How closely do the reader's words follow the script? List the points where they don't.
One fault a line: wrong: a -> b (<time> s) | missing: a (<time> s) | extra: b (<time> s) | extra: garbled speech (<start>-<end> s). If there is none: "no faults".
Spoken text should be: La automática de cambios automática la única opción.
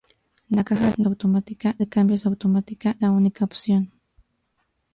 no faults